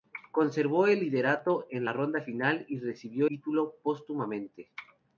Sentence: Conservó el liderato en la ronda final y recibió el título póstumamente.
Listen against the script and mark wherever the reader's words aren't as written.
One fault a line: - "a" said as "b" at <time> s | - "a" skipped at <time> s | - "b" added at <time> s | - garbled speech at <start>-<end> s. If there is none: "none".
- "el" skipped at 3.3 s